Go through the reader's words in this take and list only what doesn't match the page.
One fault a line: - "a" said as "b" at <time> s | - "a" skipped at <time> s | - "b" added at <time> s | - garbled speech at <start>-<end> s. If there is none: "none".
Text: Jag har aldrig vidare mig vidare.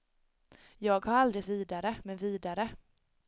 none